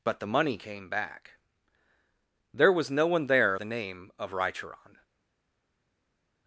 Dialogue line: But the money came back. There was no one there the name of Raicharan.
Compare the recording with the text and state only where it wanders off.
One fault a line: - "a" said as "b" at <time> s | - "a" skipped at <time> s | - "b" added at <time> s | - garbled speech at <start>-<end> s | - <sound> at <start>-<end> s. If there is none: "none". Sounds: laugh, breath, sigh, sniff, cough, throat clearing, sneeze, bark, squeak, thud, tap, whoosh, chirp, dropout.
none